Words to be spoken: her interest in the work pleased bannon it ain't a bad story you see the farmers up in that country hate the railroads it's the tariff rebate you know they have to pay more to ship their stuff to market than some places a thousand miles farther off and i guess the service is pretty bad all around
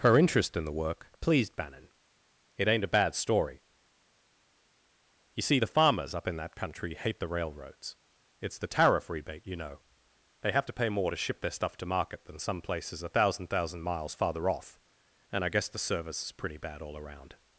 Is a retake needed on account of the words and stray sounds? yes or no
yes